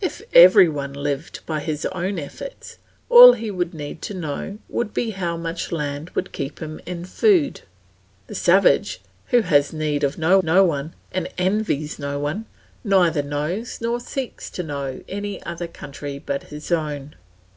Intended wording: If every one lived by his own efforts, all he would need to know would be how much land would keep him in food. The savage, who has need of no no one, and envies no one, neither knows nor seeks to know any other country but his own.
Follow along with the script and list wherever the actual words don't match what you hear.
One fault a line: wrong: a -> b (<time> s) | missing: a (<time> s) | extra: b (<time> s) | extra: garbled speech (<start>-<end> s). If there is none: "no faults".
no faults